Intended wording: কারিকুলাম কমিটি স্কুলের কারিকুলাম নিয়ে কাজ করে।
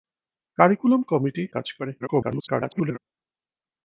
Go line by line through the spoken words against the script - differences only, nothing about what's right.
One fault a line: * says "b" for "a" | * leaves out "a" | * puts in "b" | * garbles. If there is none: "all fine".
* leaves out "স্কুলের কারিকুলাম নিয়ে"
* garbles